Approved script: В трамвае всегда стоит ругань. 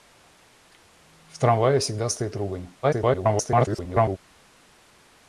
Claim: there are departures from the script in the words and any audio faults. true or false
true